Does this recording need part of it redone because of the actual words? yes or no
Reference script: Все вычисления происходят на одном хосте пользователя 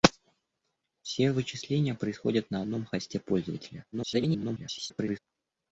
yes